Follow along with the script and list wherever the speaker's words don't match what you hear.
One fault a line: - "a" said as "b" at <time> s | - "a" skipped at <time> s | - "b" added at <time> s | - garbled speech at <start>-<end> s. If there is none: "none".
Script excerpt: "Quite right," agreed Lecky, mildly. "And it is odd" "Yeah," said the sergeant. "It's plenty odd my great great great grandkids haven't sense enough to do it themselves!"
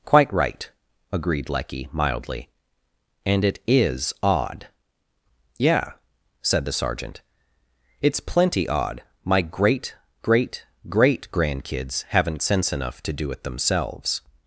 none